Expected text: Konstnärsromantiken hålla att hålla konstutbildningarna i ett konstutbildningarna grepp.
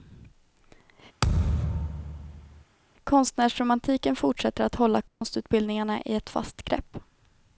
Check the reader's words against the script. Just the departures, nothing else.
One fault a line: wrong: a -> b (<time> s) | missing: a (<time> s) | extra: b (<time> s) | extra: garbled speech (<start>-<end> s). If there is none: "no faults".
wrong: hålla -> fortsätter (4.2 s)
wrong: konstutbildningarna -> fast (6.3 s)